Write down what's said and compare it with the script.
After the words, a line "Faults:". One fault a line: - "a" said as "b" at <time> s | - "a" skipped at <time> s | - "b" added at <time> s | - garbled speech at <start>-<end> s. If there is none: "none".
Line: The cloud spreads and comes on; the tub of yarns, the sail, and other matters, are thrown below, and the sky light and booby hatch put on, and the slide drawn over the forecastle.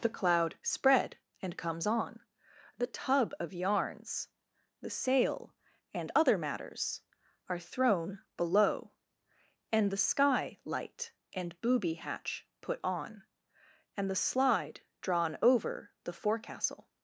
The cloud spread and comes on; the tub of yarns, the sail, and other matters, are thrown below, and the sky light and booby hatch put on, and the slide drawn over the forecastle.
Faults:
- "spreads" said as "spread" at 0.6 s